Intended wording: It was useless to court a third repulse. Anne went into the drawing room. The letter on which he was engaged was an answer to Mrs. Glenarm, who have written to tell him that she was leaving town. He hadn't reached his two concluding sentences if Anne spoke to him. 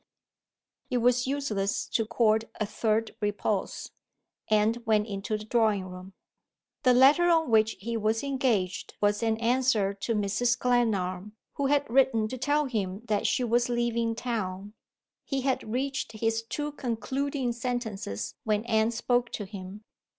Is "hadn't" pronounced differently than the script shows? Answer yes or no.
yes